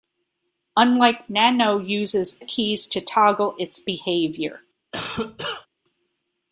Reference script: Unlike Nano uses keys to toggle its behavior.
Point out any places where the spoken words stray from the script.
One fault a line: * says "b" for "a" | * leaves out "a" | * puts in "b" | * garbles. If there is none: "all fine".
all fine